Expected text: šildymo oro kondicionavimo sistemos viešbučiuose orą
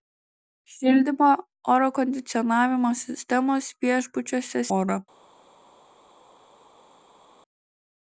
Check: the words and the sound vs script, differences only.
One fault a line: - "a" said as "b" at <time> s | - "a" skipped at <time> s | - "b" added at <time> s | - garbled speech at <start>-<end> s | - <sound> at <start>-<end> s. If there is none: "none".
none